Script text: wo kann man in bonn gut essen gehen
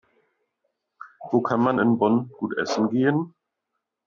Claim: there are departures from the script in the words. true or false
false